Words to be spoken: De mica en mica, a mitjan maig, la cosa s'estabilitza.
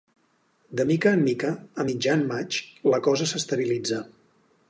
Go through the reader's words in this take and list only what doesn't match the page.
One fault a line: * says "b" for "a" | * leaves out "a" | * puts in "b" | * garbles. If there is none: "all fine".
all fine